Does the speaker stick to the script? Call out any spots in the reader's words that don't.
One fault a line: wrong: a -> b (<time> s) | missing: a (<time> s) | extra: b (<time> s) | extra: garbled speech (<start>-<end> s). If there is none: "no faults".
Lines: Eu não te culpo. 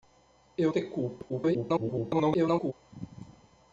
missing: não (0.7 s)
extra: garbled speech (1.3-2.7 s)